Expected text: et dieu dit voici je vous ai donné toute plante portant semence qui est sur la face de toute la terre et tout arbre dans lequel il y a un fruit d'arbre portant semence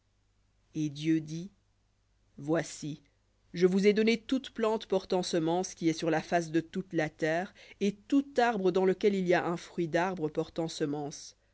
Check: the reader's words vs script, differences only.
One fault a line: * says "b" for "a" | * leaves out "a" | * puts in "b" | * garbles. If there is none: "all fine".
all fine